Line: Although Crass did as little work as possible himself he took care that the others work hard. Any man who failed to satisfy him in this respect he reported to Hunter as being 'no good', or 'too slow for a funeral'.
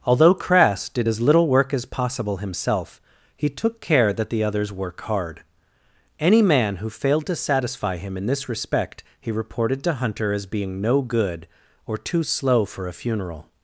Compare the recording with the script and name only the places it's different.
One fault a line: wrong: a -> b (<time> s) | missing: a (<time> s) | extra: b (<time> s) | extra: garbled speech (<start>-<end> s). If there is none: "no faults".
no faults